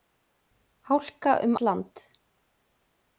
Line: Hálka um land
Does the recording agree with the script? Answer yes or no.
yes